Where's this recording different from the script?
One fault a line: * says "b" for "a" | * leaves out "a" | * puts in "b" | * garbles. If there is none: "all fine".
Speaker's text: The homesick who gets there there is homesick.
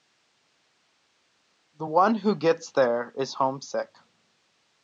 * says "one" for "homesick"
* leaves out "there"